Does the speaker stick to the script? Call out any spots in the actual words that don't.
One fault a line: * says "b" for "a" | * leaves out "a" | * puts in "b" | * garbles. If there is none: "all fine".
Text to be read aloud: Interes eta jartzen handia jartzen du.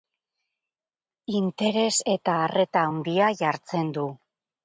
* says "arreta" for "jartzen"